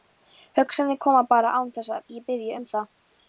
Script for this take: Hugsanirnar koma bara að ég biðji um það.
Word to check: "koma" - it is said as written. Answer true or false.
true